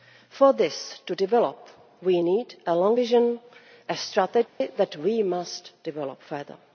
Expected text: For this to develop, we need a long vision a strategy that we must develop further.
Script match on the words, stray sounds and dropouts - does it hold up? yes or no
no